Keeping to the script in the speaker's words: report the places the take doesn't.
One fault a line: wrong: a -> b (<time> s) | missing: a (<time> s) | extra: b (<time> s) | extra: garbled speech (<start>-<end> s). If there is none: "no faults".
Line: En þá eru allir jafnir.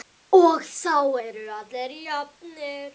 wrong: En -> Og (0.4 s)